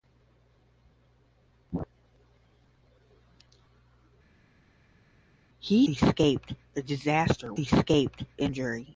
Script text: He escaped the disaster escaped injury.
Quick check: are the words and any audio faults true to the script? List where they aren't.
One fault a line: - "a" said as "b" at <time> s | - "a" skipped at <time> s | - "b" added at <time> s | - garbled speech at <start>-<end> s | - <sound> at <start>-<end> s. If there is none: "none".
none